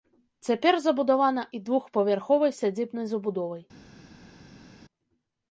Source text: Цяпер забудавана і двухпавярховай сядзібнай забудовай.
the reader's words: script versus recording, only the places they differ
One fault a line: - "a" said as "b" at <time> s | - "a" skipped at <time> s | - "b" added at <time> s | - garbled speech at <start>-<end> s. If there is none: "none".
none